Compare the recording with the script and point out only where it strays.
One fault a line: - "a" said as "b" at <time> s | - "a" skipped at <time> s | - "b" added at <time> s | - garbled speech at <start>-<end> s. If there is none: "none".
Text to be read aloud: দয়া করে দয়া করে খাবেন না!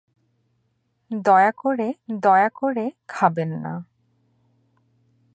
none